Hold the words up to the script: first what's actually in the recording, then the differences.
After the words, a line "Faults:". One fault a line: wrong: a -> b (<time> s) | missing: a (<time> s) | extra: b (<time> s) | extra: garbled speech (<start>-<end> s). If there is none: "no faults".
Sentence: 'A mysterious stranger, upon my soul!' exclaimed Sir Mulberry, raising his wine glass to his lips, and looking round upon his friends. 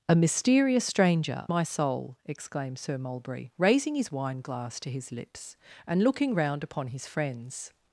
'A mysterious stranger, my soul!' exclaimed Sir Mulberry, raising his wine glass to his lips, and looking round upon his friends.
Faults:
missing: upon (1.5 s)